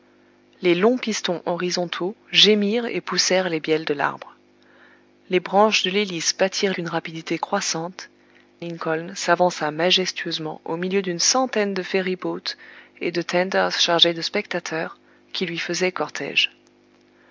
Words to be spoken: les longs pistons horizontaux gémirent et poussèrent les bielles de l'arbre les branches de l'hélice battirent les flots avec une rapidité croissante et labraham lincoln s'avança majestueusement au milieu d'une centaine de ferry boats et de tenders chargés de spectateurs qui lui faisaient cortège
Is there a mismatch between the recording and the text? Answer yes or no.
yes